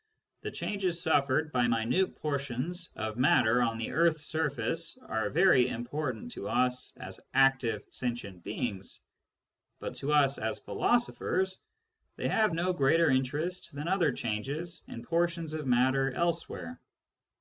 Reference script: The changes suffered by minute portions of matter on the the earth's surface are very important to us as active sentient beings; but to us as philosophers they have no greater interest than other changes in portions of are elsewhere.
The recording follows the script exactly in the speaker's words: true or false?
false